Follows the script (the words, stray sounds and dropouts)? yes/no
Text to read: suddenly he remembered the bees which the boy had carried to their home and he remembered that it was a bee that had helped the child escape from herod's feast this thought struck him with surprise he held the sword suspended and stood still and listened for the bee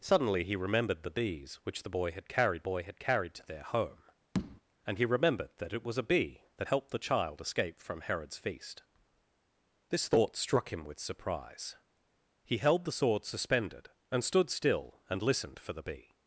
no